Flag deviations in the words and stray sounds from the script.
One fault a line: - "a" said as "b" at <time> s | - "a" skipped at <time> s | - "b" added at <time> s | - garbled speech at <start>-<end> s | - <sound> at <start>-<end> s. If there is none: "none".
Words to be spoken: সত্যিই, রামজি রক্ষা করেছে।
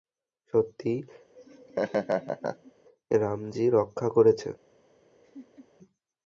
- laugh at 1.4-2.7 s
- laugh at 5.2-5.7 s